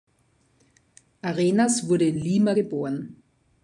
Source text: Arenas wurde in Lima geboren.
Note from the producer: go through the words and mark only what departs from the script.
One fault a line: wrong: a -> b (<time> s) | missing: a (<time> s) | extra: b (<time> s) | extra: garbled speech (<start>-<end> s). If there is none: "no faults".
no faults